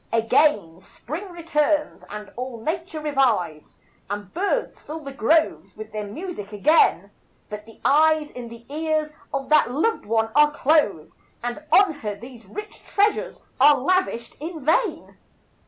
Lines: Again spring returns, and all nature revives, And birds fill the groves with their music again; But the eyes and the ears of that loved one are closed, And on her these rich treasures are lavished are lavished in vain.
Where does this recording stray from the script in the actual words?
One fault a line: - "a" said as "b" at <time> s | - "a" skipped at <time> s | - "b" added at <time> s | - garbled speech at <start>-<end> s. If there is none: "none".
- "are lavished" skipped at 14.3 s